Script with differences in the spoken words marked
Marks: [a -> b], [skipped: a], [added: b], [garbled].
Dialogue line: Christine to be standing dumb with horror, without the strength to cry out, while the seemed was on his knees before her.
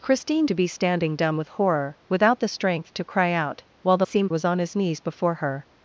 Christine to be standing dumb with horror, without the strength to cry out, while the seemed was on his knees before her.